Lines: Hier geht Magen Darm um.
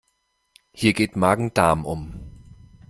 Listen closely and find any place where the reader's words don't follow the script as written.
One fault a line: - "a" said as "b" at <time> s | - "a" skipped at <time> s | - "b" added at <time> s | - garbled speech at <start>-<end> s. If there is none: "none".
none